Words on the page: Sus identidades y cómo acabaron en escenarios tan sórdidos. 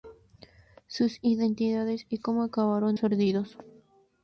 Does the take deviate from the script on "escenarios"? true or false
true